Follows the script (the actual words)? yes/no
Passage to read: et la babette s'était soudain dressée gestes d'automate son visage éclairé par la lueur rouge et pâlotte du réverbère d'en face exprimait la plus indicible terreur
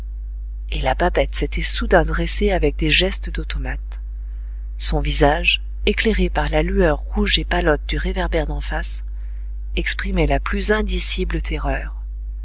no